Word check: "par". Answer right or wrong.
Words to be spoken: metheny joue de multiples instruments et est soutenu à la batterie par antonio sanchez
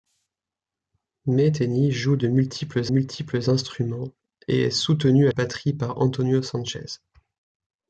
right